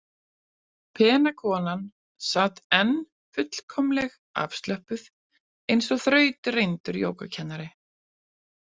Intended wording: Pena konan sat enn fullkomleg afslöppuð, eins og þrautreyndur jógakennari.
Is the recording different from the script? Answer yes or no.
no